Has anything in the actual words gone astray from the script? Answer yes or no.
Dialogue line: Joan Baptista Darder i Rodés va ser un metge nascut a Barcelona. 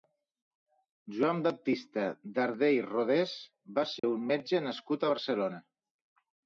no